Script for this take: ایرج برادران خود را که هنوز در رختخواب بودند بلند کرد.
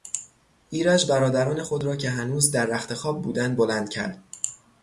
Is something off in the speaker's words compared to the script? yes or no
no